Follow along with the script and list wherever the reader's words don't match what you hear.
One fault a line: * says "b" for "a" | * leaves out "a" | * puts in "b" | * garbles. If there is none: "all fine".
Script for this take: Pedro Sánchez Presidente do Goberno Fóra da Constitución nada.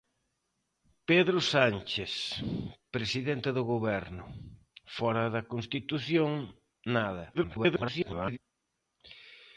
* garbles